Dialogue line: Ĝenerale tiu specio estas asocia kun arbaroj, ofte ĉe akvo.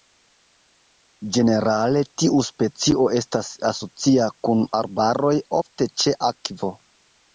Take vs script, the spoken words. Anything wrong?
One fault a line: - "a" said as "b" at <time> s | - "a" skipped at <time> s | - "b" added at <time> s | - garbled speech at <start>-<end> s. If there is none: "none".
none